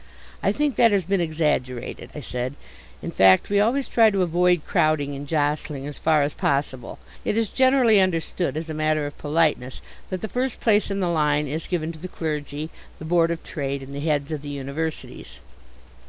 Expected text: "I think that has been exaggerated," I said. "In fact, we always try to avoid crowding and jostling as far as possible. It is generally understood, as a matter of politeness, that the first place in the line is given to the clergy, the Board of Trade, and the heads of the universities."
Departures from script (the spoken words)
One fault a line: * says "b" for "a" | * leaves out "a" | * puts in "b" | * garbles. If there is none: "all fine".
all fine